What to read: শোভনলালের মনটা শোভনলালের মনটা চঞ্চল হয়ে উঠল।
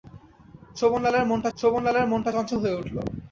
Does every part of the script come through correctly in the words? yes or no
yes